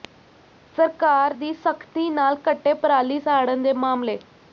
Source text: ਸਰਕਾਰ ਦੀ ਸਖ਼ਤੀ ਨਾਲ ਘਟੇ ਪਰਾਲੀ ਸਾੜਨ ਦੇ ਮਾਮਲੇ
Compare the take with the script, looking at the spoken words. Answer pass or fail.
pass